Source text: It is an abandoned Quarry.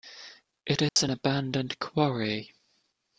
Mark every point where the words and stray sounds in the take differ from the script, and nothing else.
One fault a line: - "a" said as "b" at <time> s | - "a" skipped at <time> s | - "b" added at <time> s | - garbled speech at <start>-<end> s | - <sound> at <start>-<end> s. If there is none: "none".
- dropout at 0.9-1.0 s